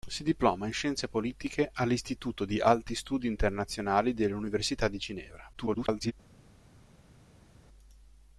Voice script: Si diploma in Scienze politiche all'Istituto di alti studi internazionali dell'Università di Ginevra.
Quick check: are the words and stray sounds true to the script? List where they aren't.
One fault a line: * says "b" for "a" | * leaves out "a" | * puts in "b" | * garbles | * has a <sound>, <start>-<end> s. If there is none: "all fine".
* garbles